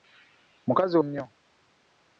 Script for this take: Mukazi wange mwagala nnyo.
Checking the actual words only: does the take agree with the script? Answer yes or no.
no